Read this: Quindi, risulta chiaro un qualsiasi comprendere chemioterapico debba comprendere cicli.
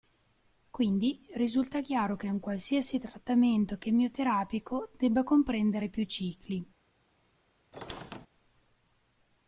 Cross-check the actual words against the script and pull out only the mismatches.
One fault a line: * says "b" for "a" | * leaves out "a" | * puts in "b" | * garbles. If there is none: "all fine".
* puts in "che"
* says "trattamento" for "comprendere"
* puts in "più"